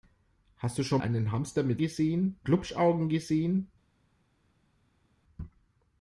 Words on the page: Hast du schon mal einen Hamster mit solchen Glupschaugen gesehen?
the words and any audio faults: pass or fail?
fail